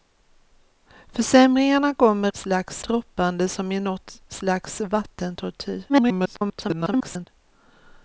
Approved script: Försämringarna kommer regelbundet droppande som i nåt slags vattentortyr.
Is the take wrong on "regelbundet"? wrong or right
wrong